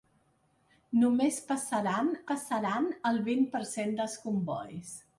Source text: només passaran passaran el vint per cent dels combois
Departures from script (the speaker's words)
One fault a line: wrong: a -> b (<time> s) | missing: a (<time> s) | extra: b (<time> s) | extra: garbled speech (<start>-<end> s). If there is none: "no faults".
no faults